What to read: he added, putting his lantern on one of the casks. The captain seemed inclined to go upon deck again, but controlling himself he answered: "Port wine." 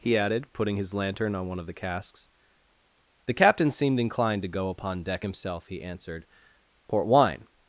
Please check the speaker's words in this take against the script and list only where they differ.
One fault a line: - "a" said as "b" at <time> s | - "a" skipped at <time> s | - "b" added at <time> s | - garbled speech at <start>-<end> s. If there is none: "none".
- "again but controlling" skipped at 5.2 s